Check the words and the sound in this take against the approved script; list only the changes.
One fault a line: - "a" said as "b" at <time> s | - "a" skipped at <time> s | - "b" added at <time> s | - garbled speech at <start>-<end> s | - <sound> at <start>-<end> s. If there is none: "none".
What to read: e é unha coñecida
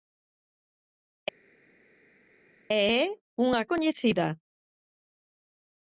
none